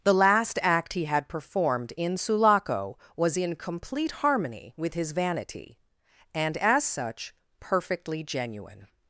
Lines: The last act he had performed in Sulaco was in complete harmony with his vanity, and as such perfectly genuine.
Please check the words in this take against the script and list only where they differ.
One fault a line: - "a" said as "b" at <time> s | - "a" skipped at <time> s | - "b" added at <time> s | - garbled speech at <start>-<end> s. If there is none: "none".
none